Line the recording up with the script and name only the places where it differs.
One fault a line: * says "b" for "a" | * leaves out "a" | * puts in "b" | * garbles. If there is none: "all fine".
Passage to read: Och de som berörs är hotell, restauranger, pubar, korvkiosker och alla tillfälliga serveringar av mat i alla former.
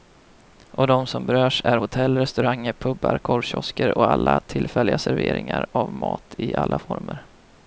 all fine